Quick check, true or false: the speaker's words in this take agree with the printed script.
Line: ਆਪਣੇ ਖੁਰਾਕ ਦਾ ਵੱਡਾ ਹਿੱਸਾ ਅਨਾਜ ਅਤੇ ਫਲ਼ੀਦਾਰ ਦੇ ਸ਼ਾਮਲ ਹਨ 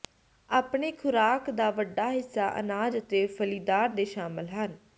true